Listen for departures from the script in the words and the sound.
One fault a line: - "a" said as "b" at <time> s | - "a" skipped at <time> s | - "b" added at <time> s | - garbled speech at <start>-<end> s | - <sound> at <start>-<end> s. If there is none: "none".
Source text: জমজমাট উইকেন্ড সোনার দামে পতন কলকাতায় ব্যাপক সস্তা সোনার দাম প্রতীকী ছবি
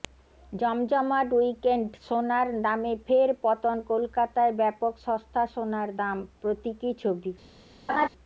- "ফের" added at 3.1 s
- laugh at 7.9-8.1 s